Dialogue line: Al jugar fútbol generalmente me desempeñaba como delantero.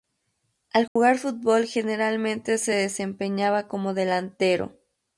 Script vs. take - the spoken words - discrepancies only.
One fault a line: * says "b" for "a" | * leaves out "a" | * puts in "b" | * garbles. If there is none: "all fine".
* says "se" for "me"